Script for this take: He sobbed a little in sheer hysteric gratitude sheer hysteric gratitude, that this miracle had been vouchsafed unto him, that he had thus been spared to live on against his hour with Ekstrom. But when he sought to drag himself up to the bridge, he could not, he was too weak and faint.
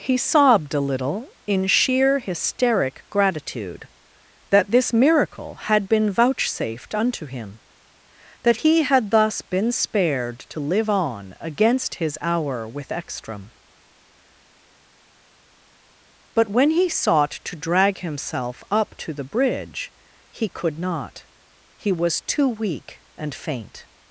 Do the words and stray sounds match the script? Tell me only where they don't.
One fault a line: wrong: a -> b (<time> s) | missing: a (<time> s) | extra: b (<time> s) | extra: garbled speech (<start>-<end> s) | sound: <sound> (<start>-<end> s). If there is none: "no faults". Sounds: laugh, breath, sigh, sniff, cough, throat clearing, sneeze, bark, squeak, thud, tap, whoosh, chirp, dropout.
missing: sheer hysteric gratitude (3.9 s)